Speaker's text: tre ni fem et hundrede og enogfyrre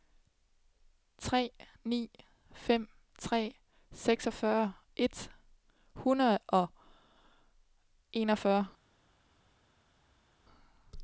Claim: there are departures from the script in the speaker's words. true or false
true